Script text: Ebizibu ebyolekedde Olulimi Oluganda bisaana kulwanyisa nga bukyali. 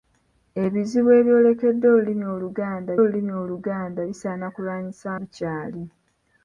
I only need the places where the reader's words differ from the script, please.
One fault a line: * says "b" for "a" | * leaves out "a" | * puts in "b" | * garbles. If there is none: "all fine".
* puts in "Olulimi Oluganda"
* leaves out "nga"